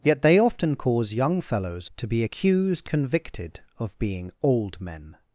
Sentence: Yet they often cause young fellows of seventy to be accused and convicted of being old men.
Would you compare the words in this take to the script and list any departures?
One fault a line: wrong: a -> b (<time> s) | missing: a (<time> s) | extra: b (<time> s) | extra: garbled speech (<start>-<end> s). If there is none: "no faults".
missing: of seventy (1.9 s)
missing: and (2.9 s)